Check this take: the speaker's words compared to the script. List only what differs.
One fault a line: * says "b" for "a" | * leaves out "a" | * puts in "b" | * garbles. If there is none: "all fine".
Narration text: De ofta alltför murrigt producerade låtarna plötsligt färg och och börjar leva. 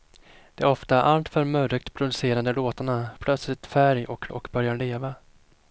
all fine